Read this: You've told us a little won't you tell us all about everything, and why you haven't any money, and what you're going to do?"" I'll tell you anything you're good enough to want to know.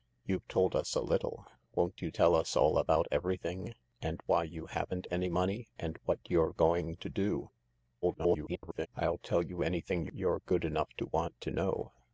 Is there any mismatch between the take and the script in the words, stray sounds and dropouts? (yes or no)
yes